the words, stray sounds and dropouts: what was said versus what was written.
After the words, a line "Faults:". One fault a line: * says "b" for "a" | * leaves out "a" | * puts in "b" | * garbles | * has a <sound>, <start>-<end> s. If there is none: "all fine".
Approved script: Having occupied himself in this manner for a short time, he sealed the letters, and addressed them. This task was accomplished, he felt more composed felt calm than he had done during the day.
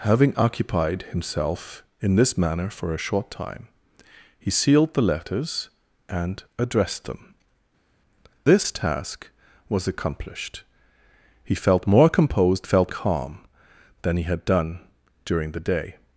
Having occupied himself in this manner for a short time, he sealed the letters, and addressed them. This task was accomplished, he felt more composed felt calm than he had done during the day.
Faults:
all fine